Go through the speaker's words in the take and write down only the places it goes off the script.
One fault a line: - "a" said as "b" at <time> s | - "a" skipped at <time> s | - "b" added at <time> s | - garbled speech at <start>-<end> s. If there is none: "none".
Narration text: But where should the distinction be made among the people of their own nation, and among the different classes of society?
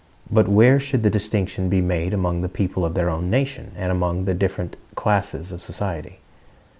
none